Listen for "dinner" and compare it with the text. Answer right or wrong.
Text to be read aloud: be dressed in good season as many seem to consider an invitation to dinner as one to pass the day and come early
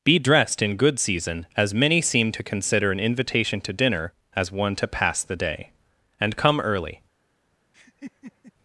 right